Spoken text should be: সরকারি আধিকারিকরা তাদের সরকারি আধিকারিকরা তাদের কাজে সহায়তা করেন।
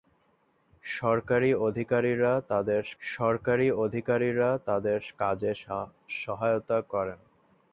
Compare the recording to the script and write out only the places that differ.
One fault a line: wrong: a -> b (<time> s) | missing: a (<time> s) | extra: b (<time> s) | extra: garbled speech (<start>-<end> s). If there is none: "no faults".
no faults